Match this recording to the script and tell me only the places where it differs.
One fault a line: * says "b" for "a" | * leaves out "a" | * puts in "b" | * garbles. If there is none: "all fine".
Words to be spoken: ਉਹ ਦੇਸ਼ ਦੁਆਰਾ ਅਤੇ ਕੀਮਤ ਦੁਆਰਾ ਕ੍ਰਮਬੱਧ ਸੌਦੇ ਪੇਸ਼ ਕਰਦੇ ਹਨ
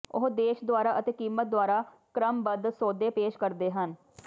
all fine